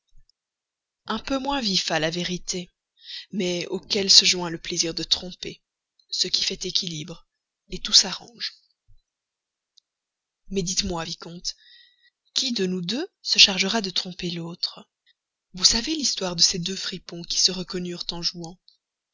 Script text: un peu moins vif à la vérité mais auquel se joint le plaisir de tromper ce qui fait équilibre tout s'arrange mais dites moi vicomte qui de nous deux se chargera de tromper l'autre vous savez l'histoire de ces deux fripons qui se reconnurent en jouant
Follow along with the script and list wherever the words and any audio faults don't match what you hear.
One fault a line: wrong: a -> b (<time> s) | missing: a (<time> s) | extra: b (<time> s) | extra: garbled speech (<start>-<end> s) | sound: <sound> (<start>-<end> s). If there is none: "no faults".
no faults